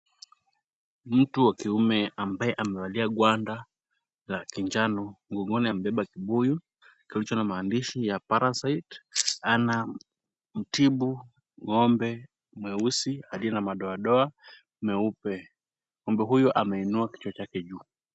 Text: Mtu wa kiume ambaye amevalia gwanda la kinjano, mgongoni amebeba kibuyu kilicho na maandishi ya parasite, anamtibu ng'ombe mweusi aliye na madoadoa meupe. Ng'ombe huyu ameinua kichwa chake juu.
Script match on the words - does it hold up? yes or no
yes